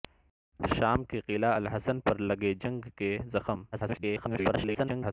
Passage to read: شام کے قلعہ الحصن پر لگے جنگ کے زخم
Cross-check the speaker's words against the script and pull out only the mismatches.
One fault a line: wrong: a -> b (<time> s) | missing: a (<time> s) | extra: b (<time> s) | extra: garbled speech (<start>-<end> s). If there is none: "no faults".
extra: garbled speech (3.7-5.1 s)